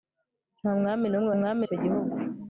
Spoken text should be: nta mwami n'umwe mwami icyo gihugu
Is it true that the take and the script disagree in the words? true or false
false